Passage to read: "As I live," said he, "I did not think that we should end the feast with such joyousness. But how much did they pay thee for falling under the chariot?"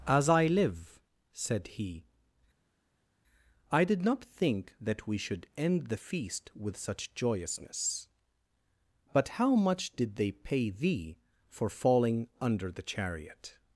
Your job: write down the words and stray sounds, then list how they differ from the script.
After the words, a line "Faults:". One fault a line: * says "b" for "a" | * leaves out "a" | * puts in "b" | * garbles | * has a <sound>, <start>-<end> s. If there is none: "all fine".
"As I live," said he, "I did not think that we should end the feast with such joyousness. But how much did they pay thee for falling under the chariot?"
Faults:
all fine